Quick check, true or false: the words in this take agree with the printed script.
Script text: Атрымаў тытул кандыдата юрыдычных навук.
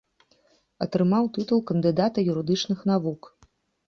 true